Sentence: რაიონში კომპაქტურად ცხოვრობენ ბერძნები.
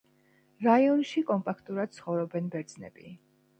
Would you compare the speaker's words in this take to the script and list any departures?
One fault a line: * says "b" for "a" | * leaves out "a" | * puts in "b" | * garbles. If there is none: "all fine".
all fine